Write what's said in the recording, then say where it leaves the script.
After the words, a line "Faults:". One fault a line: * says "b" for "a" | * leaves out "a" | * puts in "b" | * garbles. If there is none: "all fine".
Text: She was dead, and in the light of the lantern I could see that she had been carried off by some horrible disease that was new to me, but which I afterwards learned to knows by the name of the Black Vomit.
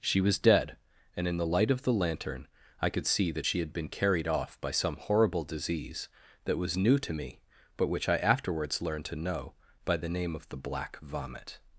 She was dead, and in the light of the lantern I could see that she had been carried off by some horrible disease that was new to me, but which I afterwards learned to know by the name of the Black Vomit.
Faults:
* says "know" for "knows"